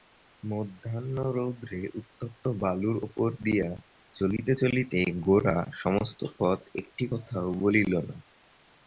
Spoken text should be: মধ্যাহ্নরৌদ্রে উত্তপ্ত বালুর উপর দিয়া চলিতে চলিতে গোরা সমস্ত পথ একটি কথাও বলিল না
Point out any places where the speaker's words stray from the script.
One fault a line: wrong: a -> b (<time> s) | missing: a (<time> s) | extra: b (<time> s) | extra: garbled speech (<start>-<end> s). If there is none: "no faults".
no faults